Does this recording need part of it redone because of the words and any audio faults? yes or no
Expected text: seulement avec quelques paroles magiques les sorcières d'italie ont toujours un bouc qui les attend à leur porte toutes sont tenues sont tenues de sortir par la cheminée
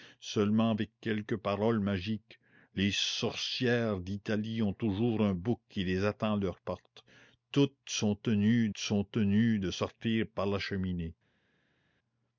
no